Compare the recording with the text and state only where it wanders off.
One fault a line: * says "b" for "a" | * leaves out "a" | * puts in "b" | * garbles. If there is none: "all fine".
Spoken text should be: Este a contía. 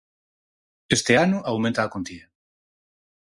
* puts in "ano aumenta"